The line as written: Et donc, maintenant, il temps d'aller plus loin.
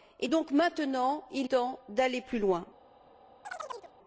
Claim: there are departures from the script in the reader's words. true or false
false